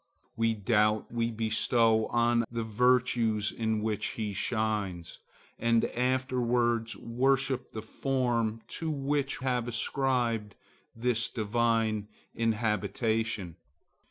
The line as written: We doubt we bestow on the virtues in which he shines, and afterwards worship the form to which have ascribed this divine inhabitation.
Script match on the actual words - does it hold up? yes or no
yes